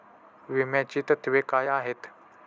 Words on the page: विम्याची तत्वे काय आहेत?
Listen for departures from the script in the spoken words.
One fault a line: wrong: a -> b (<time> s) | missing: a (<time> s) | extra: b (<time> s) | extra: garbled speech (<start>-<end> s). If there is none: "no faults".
no faults